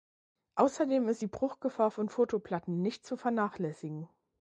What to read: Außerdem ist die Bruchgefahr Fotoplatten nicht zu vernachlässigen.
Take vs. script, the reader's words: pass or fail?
fail